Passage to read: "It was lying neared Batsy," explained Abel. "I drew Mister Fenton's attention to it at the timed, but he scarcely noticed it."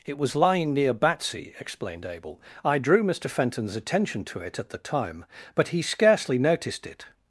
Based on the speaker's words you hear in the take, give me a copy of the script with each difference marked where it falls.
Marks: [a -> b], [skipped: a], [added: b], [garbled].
"It was lying [neared -> near] Batsy," explained Abel. "I drew Mister Fenton's attention to it at the [timed, -> time] but he scarcely noticed it."